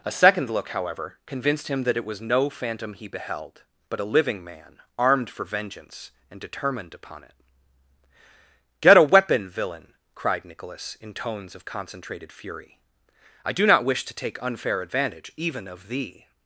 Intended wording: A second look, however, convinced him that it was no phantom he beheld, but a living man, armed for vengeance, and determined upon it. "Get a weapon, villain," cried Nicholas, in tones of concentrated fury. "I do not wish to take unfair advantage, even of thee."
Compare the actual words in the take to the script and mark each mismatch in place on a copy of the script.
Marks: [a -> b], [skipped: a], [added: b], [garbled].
A second look, however, convinced him that it was no phantom he beheld, but a living man, armed for vengeance, and determined upon it. "Get a weapon, villain," cried Nicholas, in tones of concentrated fury. "I do not wish to take unfair advantage, even of thee."